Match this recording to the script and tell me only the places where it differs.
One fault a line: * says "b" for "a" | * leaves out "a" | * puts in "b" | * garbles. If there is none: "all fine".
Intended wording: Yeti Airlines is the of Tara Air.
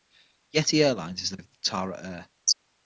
all fine